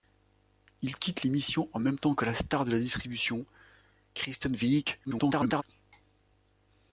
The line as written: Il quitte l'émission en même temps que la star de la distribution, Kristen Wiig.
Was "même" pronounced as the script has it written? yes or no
yes